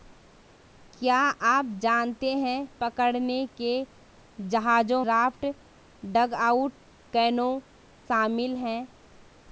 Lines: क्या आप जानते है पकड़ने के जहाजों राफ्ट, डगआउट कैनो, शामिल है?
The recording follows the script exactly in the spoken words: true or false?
true